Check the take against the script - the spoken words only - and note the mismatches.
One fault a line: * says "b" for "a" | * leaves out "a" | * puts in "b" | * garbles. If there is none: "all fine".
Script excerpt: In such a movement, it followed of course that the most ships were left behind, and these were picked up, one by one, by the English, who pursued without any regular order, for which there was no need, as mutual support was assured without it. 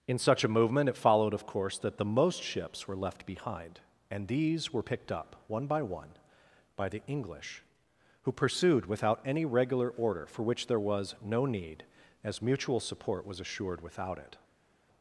all fine